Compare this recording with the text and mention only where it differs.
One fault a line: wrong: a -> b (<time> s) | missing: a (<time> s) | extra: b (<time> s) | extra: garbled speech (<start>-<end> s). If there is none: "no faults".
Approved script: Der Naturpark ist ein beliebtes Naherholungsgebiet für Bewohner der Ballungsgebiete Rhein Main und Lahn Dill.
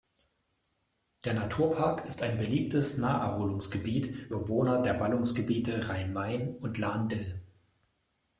missing: für (4.3 s)